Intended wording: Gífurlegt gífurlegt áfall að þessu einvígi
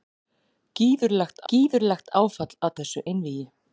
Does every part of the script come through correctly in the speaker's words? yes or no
yes